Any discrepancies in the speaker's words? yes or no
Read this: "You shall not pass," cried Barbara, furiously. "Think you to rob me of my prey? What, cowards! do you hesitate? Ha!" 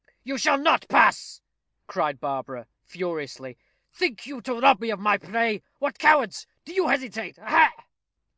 no